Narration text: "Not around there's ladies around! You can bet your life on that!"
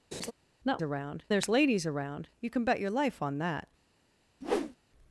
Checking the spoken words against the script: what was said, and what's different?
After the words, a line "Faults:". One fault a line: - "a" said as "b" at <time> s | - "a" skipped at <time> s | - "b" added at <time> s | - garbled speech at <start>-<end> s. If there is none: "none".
"Not around there's ladies around! You can bet your life on that!"
Faults:
none